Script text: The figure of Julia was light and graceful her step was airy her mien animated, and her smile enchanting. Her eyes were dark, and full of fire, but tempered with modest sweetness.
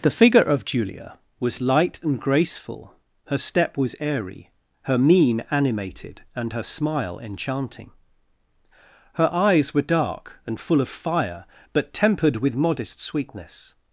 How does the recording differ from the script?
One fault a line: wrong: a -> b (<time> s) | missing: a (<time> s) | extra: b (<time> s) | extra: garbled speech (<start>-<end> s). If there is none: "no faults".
no faults